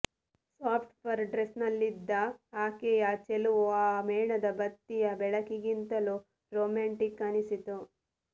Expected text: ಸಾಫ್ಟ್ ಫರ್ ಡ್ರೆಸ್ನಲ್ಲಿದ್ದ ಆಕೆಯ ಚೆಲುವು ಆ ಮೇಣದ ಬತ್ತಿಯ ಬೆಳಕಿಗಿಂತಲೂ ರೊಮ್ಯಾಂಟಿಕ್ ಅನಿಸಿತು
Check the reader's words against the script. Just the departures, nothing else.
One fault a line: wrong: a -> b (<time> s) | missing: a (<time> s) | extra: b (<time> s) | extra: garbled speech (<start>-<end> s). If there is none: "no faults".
no faults